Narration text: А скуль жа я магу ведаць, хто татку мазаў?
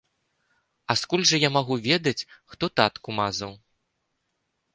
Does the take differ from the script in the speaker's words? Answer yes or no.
no